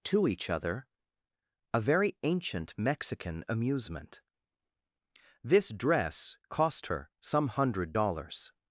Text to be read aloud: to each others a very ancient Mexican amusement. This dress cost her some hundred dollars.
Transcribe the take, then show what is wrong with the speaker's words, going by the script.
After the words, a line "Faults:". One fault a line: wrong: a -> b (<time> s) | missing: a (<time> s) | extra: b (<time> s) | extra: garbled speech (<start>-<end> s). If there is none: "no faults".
to each other a very ancient Mexican amusement. This dress cost her some hundred dollars.
Faults:
wrong: others -> other (0.5 s)